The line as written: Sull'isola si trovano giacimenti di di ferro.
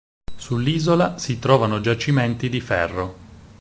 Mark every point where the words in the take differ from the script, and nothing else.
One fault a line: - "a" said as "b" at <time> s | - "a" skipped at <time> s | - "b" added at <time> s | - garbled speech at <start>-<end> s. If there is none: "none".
- "di" skipped at 2.6 s